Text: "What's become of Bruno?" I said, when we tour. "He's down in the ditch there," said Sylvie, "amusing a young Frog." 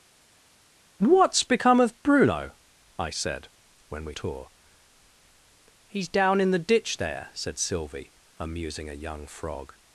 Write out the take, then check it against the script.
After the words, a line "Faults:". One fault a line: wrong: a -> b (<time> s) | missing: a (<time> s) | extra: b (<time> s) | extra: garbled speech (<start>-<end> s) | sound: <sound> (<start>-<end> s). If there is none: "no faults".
"What's become of Bruno?" I said, when we tour. "He's down in the ditch there," said Sylvie, "amusing a young Frog."
Faults:
no faults